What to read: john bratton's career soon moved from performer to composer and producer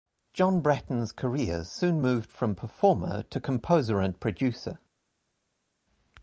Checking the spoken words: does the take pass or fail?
pass